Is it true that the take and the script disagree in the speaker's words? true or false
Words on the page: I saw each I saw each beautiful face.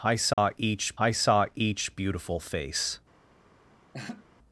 false